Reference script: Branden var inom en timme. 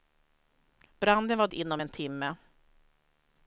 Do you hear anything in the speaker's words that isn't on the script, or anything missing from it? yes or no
no